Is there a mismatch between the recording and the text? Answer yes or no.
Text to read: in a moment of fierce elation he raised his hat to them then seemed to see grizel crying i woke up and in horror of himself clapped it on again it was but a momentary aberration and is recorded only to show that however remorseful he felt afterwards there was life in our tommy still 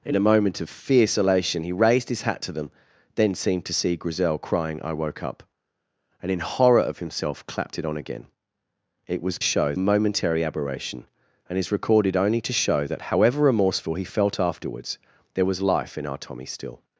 yes